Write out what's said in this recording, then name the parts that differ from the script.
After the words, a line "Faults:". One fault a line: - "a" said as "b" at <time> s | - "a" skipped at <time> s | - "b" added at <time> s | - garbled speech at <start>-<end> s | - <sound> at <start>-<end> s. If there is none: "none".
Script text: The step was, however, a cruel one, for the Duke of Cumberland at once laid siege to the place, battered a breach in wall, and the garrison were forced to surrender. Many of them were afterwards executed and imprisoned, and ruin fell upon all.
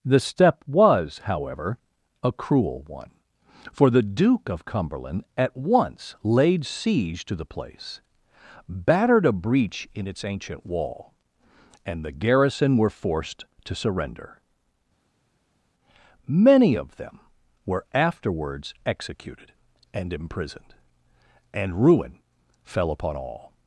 The step was, however, a cruel one, for the Duke of Cumberland at once laid siege to the place, battered a breach in its ancient wall, and the garrison were forced to surrender. Many of them were afterwards executed and imprisoned, and ruin fell upon all.
Faults:
- "its ancient" added at 10.1 s